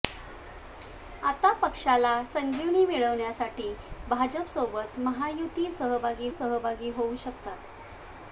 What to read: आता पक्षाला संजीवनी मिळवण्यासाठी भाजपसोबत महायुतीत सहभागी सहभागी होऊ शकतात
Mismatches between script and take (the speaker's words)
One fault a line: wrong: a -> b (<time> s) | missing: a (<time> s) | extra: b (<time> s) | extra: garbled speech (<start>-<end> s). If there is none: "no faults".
no faults